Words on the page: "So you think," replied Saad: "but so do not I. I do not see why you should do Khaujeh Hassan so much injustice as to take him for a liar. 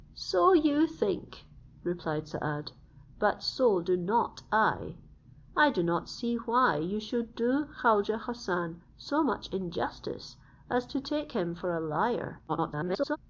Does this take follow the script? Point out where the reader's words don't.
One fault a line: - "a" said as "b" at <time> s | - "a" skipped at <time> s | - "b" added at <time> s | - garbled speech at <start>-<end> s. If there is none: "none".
- garbled speech at 12.5-13.2 s